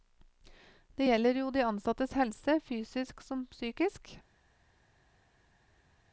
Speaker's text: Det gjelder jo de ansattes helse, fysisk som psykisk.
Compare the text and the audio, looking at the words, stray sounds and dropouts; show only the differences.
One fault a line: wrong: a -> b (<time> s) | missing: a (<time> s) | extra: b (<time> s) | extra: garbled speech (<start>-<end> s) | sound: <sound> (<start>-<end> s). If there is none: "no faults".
no faults